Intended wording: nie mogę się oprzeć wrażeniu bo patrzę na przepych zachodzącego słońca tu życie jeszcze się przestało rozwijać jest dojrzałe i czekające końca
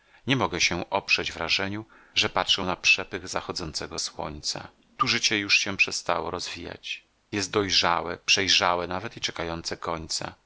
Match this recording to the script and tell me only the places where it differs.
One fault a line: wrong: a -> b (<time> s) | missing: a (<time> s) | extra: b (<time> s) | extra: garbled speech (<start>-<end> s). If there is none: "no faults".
wrong: bo -> że (2.1 s)
wrong: jeszcze -> już (5.4 s)
extra: przejrzałe nawet (8.2 s)